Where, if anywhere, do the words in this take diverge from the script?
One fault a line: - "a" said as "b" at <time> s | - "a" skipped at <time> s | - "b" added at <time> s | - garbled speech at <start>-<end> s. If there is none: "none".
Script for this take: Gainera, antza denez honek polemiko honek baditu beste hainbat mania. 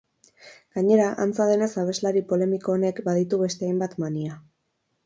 - "honek" said as "abeslari" at 1.8 s